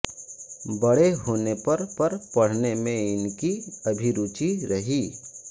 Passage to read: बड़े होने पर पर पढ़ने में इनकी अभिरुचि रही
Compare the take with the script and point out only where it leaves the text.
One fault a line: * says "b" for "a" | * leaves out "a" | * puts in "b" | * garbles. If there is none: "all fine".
all fine